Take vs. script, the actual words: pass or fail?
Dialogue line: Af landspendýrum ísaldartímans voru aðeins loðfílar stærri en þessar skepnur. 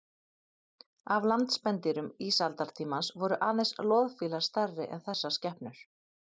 pass